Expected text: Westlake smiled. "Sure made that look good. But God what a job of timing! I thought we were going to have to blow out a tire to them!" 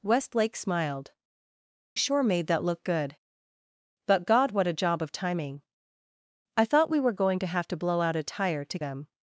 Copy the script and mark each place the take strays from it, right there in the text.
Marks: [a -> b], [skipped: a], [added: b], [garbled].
Westlake smiled. "Sure made that look good. But God what a job of timing! I thought we were going to have to blow out a tire to them!"